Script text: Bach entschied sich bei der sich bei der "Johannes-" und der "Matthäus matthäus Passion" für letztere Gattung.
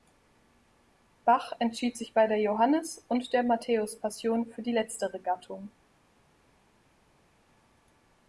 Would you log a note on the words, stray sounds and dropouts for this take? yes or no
yes